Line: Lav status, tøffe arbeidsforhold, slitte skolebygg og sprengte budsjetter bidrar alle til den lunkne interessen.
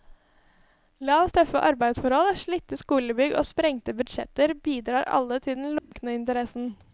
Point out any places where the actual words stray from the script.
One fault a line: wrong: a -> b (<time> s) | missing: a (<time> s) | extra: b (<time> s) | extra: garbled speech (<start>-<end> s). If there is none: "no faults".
missing: status (1.3 s)